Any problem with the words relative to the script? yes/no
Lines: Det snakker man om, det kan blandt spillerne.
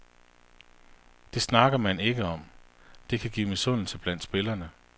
yes